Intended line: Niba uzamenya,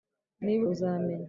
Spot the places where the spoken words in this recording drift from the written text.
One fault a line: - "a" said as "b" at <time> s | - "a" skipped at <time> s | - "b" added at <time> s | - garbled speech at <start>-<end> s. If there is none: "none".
none